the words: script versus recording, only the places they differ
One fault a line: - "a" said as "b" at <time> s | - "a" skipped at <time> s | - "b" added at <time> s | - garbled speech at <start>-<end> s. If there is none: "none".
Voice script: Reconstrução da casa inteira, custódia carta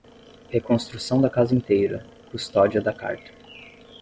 - "da" added at 2.8 s